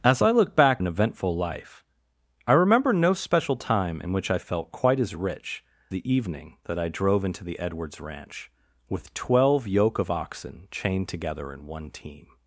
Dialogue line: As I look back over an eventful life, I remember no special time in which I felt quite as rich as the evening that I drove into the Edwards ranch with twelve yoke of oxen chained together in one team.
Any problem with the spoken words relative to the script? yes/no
yes